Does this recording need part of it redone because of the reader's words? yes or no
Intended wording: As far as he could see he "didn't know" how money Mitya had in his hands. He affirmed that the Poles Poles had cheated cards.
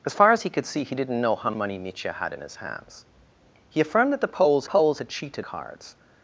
no